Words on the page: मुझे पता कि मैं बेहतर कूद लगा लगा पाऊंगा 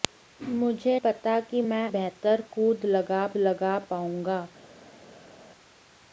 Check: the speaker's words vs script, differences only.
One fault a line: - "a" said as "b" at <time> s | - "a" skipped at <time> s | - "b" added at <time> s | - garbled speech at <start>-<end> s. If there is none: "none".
none